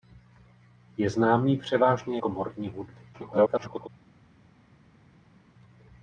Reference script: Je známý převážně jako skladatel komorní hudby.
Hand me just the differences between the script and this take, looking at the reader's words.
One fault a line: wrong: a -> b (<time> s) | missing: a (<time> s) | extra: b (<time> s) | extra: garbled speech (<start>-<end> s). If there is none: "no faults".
missing: jako skladatel (2.2 s)
extra: garbled speech (3.1-3.9 s)